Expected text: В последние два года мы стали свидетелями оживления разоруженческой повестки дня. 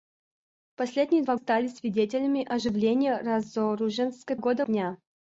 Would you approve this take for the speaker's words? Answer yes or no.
no